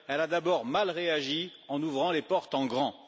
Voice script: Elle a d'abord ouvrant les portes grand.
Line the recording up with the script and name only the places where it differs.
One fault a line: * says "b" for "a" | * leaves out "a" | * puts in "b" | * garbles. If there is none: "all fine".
* puts in "mal réagi en"
* puts in "en"